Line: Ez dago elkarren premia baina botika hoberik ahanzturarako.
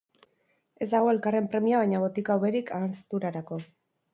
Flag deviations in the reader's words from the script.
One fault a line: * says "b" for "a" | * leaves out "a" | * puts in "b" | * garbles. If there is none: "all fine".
all fine